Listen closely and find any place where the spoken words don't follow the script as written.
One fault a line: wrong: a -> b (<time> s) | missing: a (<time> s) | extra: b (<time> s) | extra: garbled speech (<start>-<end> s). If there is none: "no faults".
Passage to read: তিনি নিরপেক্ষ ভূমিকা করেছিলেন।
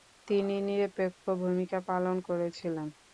extra: পালন (1.9 s)